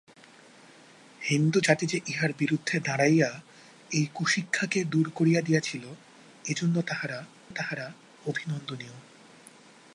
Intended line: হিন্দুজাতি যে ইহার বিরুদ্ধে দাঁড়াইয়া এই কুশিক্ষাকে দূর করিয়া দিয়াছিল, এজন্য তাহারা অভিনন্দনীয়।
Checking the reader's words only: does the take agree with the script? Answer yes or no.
no